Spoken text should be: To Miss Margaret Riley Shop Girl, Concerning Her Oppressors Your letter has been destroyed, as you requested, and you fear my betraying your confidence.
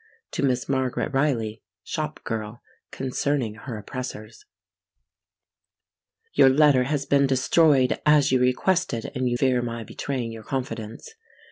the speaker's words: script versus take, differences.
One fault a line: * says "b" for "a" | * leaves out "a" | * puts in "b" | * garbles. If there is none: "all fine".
all fine